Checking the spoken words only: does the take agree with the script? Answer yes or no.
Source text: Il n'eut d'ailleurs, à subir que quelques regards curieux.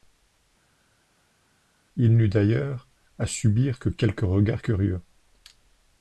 yes